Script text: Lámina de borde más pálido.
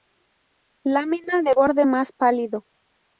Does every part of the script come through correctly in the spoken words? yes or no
yes